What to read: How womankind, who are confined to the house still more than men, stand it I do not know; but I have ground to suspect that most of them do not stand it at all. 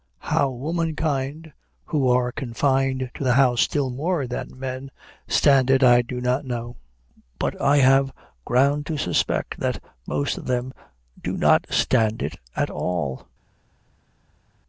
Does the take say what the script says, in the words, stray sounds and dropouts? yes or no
yes